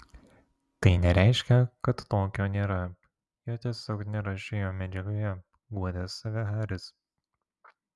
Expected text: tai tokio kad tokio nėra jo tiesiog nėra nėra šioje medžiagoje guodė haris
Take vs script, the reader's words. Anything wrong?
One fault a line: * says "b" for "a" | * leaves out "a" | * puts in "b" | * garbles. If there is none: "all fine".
* says "nereiškia" for "tokio"
* leaves out "nėra"
* puts in "save"